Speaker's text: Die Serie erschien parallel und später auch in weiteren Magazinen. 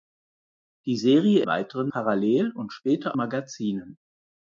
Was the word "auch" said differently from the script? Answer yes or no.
yes